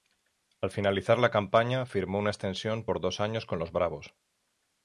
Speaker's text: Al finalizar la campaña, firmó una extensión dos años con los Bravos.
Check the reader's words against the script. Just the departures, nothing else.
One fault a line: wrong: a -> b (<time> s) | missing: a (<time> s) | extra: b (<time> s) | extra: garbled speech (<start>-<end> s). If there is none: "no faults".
extra: por (2.8 s)